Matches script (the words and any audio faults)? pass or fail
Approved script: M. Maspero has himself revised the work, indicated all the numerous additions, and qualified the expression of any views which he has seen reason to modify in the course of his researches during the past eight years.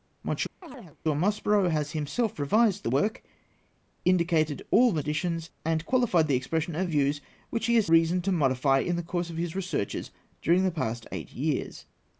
fail